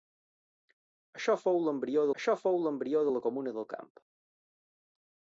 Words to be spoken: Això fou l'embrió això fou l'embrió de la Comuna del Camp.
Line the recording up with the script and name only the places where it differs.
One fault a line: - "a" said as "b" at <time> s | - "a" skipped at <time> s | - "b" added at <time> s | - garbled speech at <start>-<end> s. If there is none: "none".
none